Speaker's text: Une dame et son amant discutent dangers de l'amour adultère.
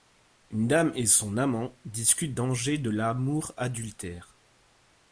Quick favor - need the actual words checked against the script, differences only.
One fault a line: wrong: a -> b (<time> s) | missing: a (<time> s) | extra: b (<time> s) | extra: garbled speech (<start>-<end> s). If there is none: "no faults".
no faults